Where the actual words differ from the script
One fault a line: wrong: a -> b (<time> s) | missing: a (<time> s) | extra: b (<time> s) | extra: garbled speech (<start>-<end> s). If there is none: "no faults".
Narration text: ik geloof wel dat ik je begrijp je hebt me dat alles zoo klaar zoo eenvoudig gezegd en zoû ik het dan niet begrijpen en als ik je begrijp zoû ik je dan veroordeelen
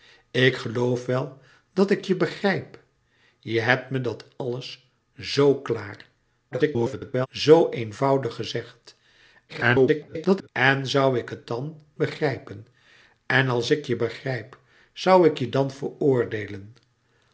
extra: garbled speech (6.5-7.3 s)
extra: garbled speech (9.5-10.5 s)
missing: niet (11.8 s)